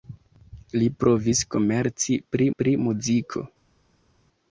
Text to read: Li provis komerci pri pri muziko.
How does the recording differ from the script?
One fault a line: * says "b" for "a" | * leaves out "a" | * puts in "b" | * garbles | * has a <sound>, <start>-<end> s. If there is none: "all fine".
all fine